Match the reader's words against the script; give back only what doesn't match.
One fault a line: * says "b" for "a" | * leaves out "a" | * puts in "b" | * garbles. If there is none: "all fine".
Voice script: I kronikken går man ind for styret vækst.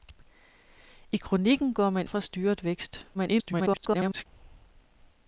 * leaves out "ind"
* garbles